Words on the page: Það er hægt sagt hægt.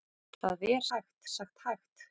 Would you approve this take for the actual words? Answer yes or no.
yes